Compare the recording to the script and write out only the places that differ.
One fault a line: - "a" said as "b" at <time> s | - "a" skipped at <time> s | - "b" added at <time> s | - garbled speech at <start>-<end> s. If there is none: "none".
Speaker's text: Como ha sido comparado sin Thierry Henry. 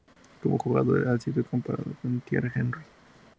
- "jugador" added at 0.6 s
- "sin" said as "con" at 2.0 s